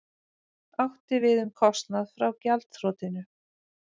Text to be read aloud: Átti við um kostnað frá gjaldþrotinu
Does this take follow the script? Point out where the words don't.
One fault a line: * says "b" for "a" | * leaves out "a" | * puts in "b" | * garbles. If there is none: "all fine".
all fine